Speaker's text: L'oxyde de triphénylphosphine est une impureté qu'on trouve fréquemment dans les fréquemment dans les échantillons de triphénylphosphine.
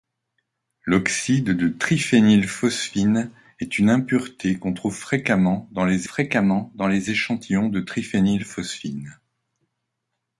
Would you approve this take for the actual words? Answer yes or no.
yes